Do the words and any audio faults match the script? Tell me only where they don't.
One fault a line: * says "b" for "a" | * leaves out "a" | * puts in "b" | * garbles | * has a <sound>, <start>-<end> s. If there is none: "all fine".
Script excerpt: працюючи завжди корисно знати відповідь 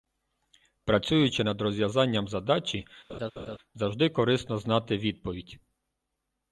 * puts in "над розв'язанням задачі"
* has a laugh, 3.1-3.6 s